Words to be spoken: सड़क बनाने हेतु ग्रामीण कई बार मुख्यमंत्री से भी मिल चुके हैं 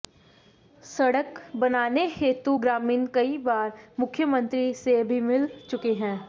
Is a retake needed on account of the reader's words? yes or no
no